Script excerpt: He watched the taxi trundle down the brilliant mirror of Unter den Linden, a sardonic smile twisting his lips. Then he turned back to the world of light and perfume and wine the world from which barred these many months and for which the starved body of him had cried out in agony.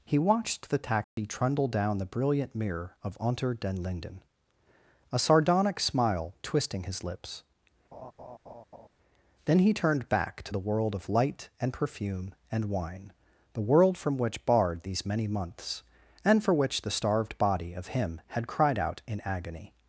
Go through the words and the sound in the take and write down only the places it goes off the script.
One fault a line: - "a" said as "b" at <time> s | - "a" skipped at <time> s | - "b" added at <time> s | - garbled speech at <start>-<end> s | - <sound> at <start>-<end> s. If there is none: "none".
- dropout at 1.0-1.2 s
- laugh at 7.9-8.9 s